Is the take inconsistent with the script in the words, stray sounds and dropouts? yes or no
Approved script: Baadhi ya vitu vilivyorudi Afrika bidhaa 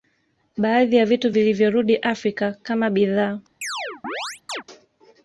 yes